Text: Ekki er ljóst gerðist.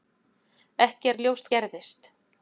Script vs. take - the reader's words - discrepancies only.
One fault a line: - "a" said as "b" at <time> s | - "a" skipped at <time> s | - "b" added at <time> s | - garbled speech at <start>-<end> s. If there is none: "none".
none